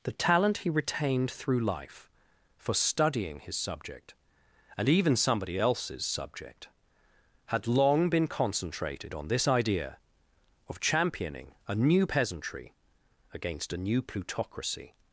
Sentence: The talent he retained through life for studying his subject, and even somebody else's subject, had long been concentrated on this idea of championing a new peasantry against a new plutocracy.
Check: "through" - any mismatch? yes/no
no